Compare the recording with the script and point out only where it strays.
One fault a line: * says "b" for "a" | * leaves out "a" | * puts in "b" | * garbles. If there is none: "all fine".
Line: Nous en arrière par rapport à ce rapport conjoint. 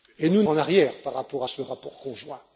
all fine